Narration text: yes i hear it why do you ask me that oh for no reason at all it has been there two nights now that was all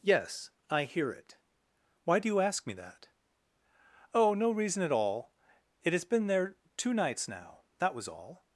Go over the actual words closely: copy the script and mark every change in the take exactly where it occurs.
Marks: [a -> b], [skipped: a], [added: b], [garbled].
yes i hear it why do you ask me that oh [skipped: for] no reason at all it has been there two nights now that was all